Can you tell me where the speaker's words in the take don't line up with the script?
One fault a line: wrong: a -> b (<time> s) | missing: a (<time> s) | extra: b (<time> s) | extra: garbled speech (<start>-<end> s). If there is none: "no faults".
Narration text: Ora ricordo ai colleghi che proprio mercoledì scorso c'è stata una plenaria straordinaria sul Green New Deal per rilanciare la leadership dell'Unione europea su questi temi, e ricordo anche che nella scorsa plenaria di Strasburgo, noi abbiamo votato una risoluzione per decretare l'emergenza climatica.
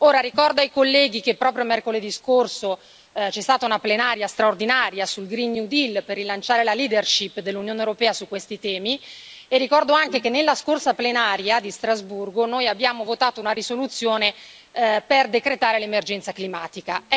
no faults